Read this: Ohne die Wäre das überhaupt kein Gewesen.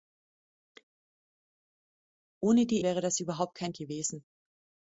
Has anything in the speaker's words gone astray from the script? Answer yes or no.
no